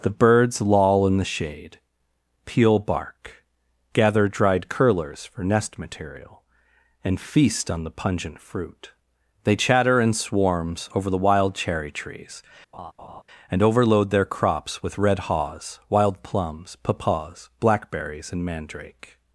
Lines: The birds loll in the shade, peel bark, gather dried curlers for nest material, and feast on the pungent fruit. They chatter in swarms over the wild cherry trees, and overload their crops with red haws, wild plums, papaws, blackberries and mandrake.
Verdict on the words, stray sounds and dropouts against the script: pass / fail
fail